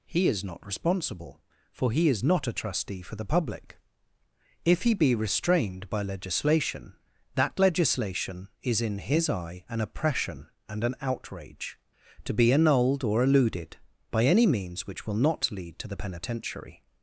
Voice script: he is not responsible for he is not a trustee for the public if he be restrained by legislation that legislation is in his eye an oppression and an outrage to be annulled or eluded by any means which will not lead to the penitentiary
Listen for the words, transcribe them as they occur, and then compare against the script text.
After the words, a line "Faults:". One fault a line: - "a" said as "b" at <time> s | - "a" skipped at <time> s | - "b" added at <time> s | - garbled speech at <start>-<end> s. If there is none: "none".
he is not responsible for he is not a trustee for the public if he be restrained by legislation that legislation is in his eye an oppression and an outrage to be annulled or eluded by any means which will not lead to the penitentiary
Faults:
none